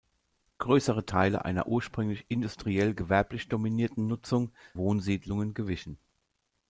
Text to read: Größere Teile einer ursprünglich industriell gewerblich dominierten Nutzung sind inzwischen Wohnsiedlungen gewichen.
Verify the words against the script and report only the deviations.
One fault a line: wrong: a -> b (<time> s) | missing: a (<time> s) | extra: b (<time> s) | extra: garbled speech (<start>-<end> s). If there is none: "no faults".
missing: sind inzwischen (4.5 s)